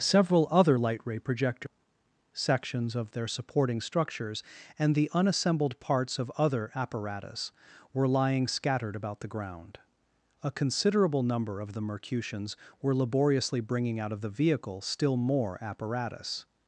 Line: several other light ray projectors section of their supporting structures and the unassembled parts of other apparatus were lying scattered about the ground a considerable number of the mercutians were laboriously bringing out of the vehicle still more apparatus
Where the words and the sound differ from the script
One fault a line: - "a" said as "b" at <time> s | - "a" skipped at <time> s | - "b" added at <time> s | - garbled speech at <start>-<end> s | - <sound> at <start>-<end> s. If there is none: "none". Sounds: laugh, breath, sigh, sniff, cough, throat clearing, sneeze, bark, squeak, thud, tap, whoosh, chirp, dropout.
- "section" said as "sections" at 2.3 s